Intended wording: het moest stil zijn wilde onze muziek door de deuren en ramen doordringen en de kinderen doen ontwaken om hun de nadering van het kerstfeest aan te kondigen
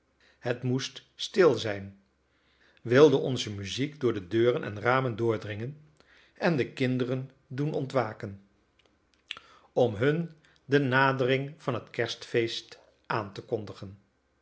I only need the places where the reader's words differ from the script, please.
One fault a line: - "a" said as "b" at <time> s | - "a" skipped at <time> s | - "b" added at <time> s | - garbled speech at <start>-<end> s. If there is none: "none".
none